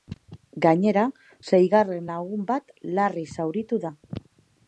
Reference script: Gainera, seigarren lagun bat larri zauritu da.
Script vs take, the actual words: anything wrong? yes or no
no